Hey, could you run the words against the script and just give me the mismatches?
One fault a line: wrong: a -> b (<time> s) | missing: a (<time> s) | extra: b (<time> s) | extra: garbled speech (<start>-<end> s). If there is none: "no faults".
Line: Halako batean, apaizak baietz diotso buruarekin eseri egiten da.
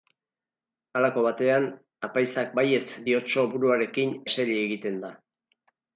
no faults